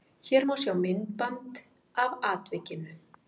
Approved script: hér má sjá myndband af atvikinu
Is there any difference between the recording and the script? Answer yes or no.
no